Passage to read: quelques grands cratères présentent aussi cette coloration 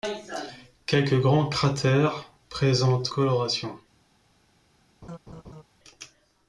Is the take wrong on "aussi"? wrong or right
wrong